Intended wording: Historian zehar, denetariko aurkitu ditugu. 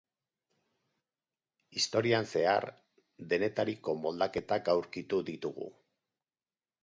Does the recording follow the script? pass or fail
fail